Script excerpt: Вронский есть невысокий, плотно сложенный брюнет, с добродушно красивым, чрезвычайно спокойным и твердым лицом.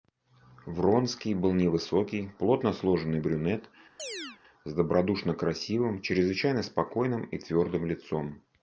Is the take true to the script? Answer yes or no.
no